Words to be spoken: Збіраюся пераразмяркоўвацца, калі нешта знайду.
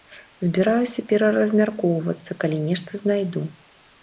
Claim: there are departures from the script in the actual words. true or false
false